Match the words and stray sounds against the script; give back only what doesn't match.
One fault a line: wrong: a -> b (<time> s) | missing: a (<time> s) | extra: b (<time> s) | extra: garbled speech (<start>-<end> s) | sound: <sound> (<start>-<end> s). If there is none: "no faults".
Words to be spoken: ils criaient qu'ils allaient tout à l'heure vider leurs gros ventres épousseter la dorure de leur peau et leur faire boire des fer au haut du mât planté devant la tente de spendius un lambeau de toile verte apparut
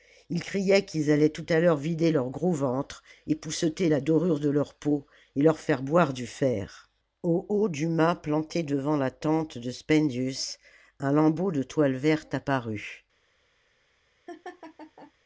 wrong: des -> du (6.1 s)
sound: laugh (14.3-15.1 s)